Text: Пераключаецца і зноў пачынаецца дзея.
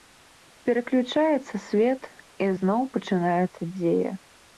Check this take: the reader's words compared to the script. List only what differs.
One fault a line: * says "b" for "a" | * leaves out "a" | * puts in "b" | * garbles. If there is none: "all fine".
* puts in "свет"